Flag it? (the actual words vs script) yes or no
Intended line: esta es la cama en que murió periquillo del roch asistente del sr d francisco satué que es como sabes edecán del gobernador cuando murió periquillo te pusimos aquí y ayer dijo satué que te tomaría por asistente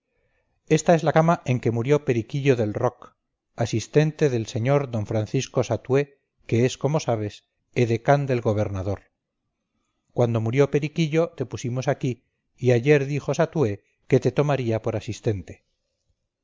no